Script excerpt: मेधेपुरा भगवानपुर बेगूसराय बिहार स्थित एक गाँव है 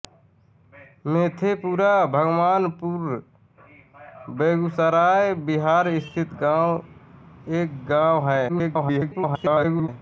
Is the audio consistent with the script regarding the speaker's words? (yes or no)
no